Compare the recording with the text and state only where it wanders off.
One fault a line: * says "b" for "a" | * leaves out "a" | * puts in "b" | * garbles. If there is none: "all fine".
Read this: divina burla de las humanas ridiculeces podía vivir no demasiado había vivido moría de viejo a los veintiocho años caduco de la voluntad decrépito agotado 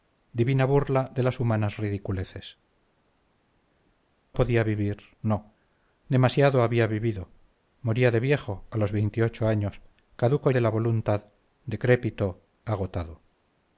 all fine